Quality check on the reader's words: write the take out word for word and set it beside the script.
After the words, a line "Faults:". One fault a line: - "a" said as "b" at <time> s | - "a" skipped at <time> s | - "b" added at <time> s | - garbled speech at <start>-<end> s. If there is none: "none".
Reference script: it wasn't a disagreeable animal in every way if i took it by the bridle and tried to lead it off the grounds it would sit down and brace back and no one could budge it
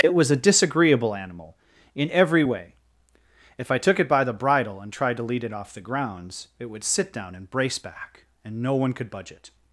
it was a disagreeable animal in every way if i took it by the bridle and tried to lead it off the grounds it would sit down and brace back and no one could budge it
Faults:
- "wasn't" said as "was" at 0.1 s